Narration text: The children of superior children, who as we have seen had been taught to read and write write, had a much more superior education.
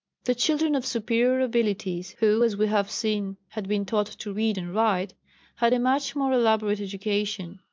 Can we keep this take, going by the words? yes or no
no